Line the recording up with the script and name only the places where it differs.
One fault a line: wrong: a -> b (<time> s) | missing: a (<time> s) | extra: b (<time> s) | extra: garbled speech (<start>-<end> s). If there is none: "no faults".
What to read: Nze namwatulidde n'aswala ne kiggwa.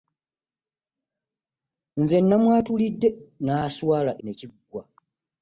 no faults